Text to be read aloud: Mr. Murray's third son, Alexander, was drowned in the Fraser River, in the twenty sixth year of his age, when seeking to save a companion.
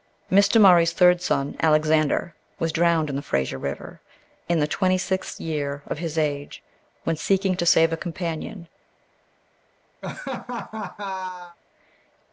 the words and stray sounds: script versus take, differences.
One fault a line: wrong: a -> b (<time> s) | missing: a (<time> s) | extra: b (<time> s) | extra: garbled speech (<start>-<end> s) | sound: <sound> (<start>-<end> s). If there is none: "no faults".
sound: laugh (10.0-11.6 s)